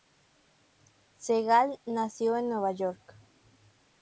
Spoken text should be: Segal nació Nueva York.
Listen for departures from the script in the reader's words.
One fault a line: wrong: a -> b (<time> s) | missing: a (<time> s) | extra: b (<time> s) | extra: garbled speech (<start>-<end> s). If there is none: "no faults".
extra: en (2.4 s)